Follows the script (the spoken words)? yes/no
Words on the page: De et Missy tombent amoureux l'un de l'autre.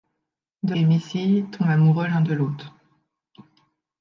yes